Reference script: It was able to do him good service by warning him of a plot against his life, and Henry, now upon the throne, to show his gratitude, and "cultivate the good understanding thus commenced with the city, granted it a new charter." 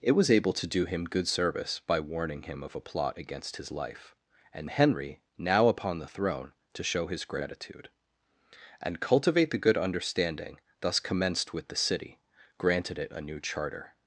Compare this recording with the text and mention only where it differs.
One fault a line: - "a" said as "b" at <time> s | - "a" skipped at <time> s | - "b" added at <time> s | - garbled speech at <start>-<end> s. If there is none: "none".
none